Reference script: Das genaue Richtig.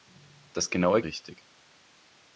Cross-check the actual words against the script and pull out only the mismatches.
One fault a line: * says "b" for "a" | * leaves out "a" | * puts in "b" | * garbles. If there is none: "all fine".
all fine